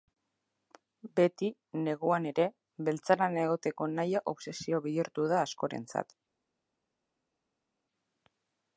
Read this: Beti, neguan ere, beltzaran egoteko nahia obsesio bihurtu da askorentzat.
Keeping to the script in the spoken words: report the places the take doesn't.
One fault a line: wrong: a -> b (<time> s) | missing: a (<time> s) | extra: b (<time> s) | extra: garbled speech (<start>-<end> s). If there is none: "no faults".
no faults